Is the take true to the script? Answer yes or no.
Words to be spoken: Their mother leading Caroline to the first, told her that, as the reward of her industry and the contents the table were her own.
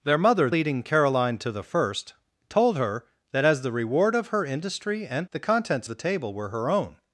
yes